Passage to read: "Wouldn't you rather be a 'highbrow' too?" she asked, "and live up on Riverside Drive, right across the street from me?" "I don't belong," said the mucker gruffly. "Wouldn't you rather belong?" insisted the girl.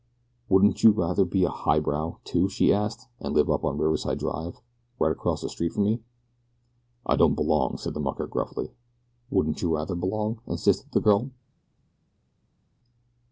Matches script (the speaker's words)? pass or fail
pass